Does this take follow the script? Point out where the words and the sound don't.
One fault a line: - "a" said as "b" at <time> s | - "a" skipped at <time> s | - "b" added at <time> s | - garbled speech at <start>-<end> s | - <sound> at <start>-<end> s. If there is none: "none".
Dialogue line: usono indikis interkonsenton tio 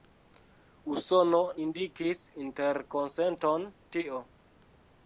none